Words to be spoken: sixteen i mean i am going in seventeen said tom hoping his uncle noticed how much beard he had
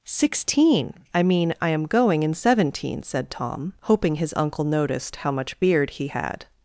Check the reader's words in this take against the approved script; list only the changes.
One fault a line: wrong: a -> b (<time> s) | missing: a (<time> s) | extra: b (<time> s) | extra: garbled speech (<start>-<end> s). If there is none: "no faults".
no faults